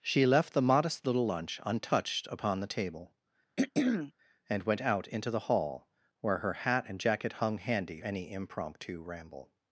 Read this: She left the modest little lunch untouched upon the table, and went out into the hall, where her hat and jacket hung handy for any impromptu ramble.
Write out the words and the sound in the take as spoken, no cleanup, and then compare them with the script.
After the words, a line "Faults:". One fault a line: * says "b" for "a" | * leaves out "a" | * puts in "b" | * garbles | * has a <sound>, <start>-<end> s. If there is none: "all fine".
She left the modest little lunch untouched upon the table, and went out into the hall, where her hat and jacket hung handy any impromptu ramble.
Faults:
* has a throat clearing, 3.6-4.1 s
* leaves out "for"